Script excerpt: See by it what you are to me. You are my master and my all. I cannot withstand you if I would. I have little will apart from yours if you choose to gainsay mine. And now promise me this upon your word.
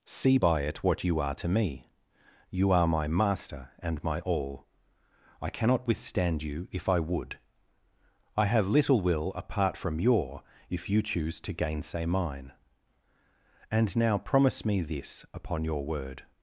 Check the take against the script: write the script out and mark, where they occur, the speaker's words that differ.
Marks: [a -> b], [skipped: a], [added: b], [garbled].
See by it what you are to me. You are my master and my all. I cannot withstand you if I would. I have little will apart from [yours -> your] if you choose to gainsay mine. And now promise me this upon your word.